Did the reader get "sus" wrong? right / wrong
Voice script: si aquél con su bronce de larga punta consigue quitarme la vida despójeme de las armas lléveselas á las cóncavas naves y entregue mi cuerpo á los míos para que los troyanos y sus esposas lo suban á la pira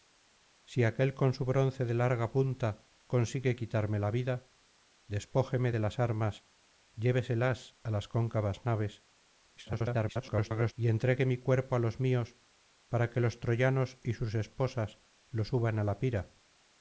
right